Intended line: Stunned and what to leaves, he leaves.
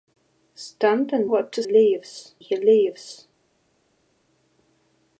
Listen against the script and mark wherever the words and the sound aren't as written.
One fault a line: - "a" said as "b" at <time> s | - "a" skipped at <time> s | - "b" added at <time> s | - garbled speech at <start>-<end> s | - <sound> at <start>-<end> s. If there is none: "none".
none